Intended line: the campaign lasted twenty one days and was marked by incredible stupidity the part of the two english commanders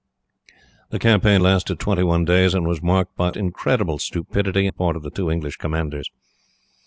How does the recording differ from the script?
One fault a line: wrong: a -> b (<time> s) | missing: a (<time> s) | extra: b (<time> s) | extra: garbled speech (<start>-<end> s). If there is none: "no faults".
no faults